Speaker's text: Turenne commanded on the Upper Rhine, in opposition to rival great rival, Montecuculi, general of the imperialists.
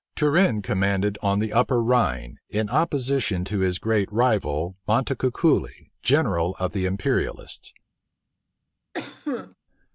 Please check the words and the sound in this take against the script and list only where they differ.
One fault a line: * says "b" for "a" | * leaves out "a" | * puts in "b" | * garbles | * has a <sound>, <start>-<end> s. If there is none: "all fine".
* says "his" for "rival"
* has a cough, 8.9-9.6 s